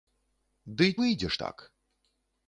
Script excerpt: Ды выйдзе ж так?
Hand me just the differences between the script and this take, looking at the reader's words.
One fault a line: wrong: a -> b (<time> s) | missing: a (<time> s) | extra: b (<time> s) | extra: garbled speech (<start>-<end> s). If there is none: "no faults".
no faults